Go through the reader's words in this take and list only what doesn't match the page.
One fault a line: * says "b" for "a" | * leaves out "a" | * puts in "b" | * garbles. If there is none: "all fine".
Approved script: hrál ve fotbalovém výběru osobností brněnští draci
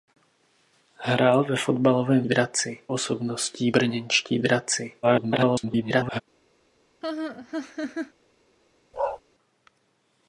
* says "draci" for "výběru"
* garbles